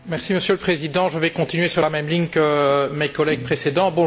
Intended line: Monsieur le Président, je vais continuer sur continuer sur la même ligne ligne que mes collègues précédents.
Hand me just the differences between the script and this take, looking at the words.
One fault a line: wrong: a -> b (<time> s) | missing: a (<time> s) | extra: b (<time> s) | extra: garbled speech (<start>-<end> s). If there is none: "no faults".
missing: continuer sur (1.8 s)
missing: ligne (2.3 s)